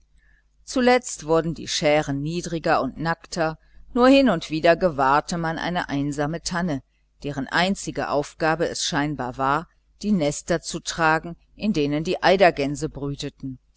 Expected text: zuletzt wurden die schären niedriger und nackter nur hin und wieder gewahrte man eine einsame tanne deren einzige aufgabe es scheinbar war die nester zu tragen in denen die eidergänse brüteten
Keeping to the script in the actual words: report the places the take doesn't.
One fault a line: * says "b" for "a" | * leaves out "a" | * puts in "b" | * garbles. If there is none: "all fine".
all fine